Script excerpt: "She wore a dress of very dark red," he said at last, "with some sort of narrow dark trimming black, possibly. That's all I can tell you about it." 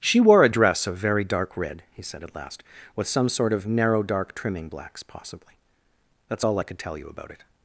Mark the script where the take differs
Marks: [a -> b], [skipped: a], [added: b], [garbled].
"She wore a dress of very dark red," he said at last, "with some sort of narrow dark trimming [black, -> blacks] possibly. That's all I [can -> could] tell you about it."